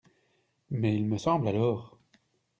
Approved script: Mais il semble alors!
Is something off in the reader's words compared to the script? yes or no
yes